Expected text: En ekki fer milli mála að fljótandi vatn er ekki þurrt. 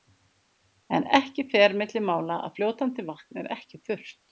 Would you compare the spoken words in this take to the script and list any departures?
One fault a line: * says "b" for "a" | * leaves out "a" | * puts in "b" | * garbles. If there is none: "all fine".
all fine